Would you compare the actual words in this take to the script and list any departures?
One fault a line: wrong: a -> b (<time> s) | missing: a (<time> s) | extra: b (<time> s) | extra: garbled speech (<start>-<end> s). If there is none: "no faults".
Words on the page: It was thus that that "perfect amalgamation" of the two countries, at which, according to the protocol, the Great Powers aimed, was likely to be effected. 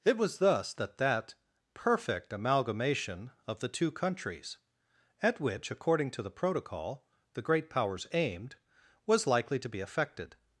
no faults